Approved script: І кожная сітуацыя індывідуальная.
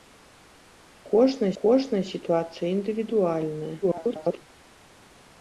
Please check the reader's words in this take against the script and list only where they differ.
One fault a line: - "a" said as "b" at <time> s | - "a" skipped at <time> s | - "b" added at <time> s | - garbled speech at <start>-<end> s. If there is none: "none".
- "кожная" added at 1.6 s
- garbled speech at 3.8-4.4 s